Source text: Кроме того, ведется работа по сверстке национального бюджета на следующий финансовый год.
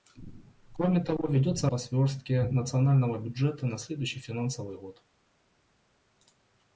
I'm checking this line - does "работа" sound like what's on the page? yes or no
no